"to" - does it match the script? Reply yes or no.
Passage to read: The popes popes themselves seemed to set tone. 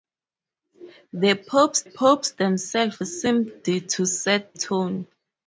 yes